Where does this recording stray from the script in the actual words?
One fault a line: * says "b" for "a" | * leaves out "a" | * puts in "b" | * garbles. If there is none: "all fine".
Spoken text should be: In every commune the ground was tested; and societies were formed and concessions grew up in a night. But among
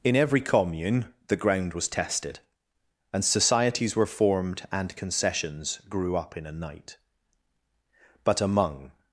all fine